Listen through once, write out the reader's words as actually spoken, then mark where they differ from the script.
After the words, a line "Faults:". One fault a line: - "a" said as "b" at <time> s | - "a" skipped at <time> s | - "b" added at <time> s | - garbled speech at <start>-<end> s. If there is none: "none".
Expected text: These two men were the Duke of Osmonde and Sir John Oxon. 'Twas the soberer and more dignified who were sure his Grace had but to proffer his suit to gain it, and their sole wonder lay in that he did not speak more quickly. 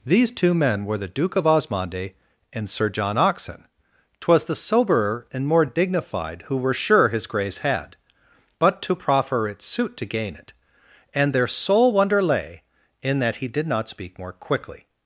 These two men were the Duke of Osmonde and Sir John Oxon. 'Twas the soberer and more dignified who were sure his Grace had but to proffer its suit to gain it, and their sole wonder lay in that he did not speak more quickly.
Faults:
- "his" said as "its" at 9.5 s